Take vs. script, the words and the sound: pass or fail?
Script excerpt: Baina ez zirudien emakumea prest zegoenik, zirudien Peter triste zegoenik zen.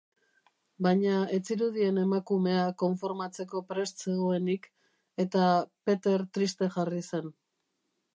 fail